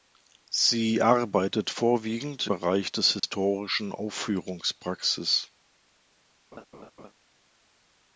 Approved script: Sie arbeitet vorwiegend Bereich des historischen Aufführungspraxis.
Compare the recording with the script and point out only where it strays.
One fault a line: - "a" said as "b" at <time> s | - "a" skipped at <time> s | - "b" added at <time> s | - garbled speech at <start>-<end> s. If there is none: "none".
none